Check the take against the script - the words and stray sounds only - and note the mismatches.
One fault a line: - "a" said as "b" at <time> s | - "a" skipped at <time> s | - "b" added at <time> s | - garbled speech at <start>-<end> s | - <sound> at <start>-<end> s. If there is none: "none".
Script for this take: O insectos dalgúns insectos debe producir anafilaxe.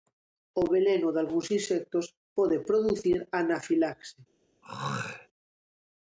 - "insectos" said as "veleno" at 0.7 s
- "debe" said as "pode" at 2.4 s
- throat clearing at 4.6-5.3 s